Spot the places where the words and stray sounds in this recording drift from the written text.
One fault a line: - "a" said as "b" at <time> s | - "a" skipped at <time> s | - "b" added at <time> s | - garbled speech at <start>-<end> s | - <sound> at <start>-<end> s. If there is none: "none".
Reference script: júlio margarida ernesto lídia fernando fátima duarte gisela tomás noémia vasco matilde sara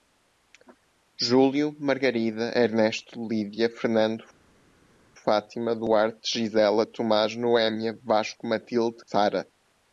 none